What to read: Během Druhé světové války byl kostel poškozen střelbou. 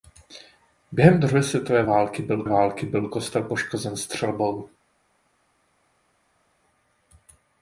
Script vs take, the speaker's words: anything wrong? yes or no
yes